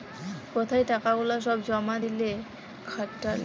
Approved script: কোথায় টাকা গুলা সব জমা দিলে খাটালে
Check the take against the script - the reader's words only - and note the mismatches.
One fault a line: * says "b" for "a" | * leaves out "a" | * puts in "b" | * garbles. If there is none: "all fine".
all fine